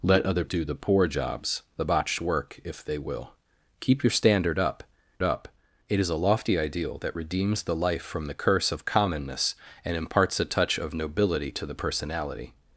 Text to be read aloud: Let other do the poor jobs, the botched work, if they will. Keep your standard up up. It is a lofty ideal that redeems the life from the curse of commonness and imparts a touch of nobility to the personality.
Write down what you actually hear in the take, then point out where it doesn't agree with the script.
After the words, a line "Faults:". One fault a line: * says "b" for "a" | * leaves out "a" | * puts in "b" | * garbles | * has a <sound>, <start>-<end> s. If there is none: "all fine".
Let other do the poor jobs, the botched work, if they will. Keep your standard up up. It is a lofty ideal that redeems the life from the curse of commonness and imparts a touch of nobility to the personality.
Faults:
all fine